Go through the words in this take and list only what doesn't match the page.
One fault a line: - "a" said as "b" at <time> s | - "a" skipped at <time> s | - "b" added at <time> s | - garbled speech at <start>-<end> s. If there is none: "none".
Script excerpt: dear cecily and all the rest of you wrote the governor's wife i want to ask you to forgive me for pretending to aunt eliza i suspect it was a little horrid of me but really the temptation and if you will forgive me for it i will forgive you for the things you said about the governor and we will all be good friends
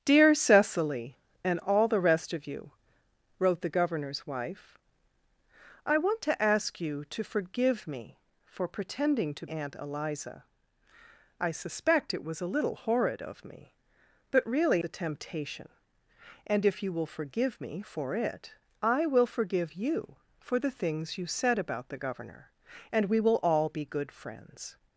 none